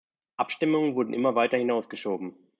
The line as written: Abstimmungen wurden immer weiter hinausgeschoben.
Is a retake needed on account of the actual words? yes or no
no